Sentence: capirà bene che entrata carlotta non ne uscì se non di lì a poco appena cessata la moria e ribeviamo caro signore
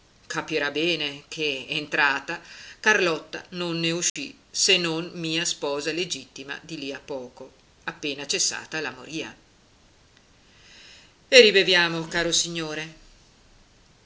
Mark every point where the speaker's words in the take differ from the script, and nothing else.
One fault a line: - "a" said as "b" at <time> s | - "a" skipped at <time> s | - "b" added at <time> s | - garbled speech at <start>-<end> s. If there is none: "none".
- "mia sposa legittima" added at 5.1 s